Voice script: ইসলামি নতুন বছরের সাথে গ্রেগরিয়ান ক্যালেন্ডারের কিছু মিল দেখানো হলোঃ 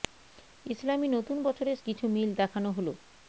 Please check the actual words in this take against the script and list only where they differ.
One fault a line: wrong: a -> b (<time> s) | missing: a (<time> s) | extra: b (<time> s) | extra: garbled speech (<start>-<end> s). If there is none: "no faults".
missing: সাথে গ্রেগরিয়ান ক্যালেন্ডারের (1.8 s)